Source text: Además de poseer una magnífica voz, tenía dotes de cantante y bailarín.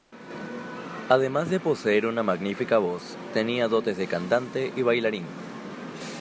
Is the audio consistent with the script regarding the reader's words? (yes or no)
yes